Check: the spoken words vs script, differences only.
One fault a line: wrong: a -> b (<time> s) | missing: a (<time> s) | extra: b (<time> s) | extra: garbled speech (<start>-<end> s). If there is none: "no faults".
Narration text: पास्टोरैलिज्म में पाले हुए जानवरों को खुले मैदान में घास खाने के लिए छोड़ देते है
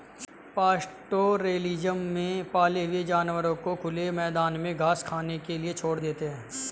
no faults